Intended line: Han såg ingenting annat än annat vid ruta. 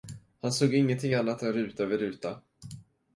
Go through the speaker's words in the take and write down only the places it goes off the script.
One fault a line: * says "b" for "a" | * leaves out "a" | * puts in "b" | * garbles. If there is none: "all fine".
* says "ruta" for "annat"